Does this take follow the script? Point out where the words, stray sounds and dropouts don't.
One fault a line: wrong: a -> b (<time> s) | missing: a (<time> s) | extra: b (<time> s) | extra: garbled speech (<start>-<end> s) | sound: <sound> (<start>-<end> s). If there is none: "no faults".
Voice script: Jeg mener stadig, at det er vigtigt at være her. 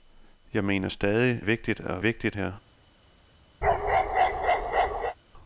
missing: at det (1.4 s)
wrong: være -> vigtigt (2.0 s)
sound: bark (3.6-5.2 s)